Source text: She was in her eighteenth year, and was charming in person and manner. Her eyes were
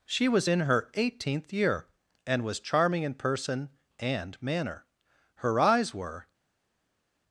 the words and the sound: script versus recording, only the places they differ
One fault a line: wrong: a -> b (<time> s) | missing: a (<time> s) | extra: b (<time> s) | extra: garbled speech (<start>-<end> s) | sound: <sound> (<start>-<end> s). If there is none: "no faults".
no faults